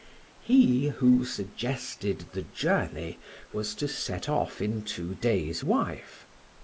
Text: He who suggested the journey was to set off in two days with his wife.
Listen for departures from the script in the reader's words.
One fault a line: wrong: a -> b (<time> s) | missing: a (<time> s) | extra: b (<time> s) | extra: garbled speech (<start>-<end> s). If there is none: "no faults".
missing: with his (5.6 s)